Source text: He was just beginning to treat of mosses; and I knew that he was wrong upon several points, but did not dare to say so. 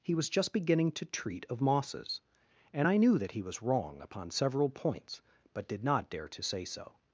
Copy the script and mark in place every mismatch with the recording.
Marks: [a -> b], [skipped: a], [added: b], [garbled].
He was just beginning to treat of mosses; and I knew that he was wrong upon several points, but did not dare to say so.